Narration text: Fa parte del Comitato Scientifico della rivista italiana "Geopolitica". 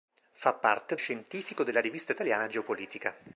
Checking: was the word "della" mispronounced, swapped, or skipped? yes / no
no